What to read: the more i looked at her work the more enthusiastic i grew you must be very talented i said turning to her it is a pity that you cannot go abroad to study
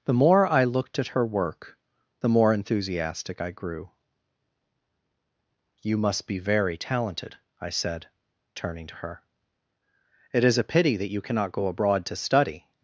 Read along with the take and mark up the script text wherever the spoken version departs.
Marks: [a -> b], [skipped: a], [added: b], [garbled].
the more i looked at her work the more enthusiastic i grew you must be very talented i said turning to her it is a pity that you cannot go abroad to study